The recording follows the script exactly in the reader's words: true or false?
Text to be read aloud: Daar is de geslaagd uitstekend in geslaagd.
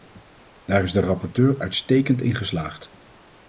false